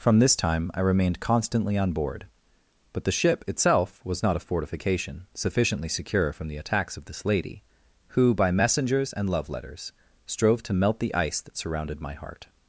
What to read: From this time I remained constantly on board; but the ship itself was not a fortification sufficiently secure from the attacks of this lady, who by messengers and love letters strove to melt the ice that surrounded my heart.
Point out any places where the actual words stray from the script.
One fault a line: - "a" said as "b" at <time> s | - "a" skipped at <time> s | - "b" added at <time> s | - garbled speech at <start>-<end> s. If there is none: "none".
none